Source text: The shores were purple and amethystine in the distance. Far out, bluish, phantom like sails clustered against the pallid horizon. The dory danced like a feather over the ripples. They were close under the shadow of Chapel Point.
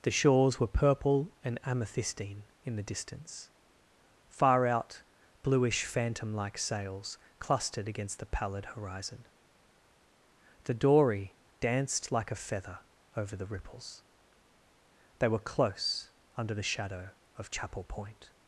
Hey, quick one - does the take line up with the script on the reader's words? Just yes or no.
yes